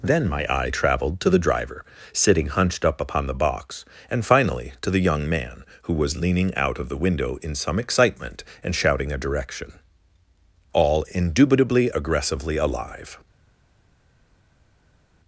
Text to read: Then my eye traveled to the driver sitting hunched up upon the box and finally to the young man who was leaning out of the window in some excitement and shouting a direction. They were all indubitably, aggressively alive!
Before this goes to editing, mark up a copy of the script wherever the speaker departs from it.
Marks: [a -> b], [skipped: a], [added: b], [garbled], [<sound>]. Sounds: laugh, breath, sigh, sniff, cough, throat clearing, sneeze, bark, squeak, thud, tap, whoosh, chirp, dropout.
Then my eye traveled to the driver sitting hunched up upon the box and finally to the young man who was leaning out of the window in some excitement and shouting a direction. [skipped: They were] all indubitably, aggressively alive!